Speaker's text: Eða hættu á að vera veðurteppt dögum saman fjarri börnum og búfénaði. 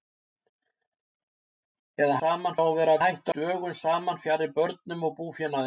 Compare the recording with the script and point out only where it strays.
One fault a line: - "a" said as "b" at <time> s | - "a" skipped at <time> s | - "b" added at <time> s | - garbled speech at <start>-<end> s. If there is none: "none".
- "hættu" said as "saman" at 2.2 s
- "veðurteppt" said as "hættu" at 3.0 s